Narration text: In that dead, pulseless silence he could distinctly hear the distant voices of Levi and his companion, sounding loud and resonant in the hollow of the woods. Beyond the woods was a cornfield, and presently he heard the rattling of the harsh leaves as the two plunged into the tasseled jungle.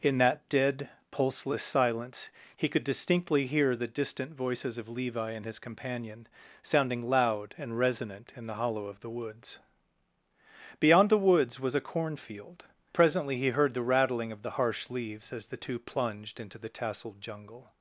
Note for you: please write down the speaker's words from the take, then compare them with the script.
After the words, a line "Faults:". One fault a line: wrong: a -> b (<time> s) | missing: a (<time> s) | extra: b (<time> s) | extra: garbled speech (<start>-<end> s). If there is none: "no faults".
In that dead, pulseless silence he could distinctly hear the distant voices of Levi and his companion, sounding loud and resonant in the hollow of the woods. Beyond the woods was a cornfield, presently he heard the rattling of the harsh leaves as the two plunged into the tasseled jungle.
Faults:
missing: and (12.7 s)